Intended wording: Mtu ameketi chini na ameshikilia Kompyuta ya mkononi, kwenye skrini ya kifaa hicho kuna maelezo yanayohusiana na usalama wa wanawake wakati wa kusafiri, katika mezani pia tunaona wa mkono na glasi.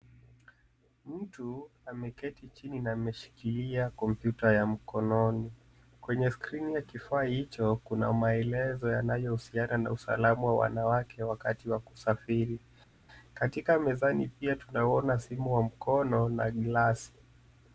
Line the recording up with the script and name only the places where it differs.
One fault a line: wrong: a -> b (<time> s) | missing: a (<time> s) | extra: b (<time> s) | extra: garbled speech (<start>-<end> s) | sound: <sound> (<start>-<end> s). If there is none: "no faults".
extra: simu (15.2 s)